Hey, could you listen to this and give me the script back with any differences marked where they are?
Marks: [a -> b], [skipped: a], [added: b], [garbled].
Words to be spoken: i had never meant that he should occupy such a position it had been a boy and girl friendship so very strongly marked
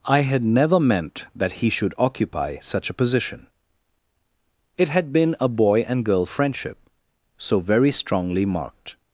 i had never meant that he should occupy such a position it had been a boy and girl friendship so very strongly marked